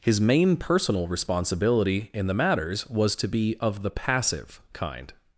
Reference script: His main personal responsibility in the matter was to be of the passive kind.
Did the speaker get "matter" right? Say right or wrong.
wrong